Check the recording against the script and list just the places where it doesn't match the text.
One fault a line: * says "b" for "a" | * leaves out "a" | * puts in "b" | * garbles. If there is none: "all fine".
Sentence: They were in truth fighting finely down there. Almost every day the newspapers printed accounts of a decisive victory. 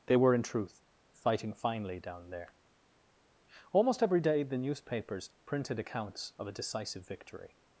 all fine